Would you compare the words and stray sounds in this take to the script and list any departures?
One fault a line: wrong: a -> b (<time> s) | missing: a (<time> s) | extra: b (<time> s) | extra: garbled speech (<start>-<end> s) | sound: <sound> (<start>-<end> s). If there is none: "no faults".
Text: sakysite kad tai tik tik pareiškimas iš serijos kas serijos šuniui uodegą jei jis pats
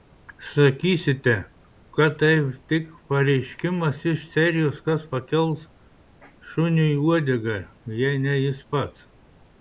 missing: tik (2.8 s)
wrong: serijos -> pakels (5.1 s)
extra: ne (8.3 s)